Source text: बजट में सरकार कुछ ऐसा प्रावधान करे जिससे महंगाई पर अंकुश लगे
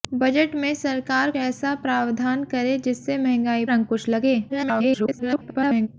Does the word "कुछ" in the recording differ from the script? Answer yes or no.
yes